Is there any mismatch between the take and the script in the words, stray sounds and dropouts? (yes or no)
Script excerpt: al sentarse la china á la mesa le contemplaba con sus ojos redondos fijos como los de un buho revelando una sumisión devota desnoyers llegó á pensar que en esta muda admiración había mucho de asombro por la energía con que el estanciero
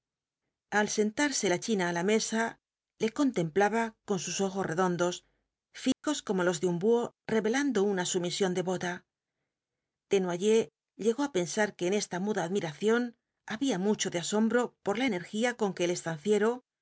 yes